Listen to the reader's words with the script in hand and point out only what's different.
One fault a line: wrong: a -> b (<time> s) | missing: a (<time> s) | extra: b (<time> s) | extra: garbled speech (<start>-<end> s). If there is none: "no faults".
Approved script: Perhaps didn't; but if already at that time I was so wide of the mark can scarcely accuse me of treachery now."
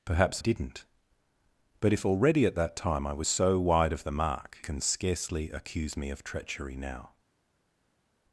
no faults